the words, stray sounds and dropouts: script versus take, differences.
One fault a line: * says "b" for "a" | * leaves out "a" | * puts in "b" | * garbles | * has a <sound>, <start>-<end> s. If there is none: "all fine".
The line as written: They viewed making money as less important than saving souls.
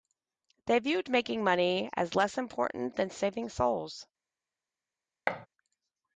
* has a thud, 5.3-5.5 s